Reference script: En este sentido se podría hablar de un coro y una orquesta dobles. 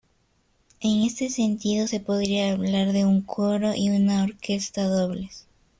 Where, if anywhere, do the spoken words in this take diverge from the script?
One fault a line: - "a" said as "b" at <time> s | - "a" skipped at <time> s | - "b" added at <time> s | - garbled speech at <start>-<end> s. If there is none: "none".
none